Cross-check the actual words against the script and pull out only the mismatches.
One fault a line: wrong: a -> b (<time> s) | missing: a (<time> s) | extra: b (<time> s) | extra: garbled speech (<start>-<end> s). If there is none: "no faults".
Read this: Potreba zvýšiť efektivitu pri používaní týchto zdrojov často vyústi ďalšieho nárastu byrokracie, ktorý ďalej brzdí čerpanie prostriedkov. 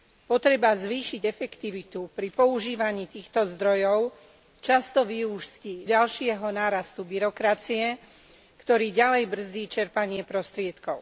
no faults